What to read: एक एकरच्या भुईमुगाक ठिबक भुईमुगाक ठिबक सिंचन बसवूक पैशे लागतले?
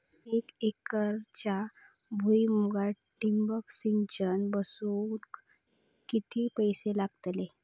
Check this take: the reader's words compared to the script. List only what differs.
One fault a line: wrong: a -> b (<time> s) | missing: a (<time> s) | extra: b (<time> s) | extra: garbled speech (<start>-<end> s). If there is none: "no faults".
missing: भुईमुगाक ठिबक (3.7 s)
extra: किती (6.1 s)